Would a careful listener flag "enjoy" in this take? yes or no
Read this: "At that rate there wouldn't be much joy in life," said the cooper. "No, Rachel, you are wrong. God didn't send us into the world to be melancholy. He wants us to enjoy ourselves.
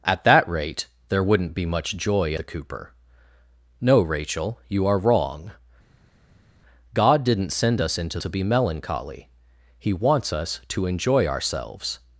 no